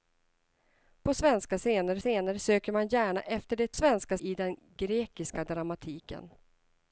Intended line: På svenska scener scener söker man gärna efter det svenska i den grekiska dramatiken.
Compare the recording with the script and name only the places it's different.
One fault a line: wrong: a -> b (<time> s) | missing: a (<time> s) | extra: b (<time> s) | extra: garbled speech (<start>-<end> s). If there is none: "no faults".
no faults